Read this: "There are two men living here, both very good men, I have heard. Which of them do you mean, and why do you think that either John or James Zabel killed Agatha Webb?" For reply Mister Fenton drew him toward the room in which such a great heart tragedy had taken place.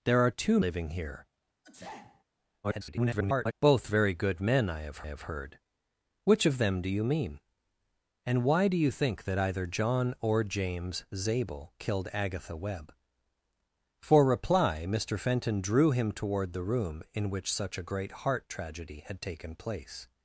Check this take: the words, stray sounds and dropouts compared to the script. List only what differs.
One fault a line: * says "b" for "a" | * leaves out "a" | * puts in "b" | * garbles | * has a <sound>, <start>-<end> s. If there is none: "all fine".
* leaves out "men"
* has a sneeze, 1.6-2.2 s
* garbles
* puts in "have"